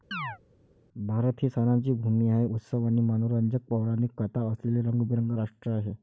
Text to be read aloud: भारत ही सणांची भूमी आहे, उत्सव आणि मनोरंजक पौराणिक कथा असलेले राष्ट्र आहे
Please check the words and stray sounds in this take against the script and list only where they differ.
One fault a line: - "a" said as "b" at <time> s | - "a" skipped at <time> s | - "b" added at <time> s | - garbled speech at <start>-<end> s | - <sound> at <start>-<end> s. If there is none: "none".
- chirp at 0.1-0.4 s
- "रंगीबेरंगी" added at 4.8 s